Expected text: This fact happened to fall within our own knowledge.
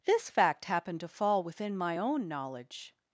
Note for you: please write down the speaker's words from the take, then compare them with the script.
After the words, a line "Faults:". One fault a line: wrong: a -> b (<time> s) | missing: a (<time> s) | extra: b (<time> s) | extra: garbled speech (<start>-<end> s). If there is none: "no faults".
This fact happened to fall within my own knowledge.
Faults:
wrong: our -> my (1.8 s)